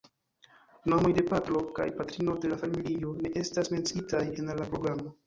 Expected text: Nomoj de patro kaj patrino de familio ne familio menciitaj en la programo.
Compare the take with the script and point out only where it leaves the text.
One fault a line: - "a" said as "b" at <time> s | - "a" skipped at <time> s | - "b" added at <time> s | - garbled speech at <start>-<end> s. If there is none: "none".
- "la" added at 2.5 s
- "familio" said as "estas" at 3.4 s